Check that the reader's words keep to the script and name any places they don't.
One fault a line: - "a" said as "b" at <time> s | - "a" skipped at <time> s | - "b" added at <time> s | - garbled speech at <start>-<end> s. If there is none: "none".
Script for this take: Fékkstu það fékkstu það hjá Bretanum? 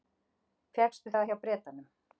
- "fékkstu það" skipped at 1.3 s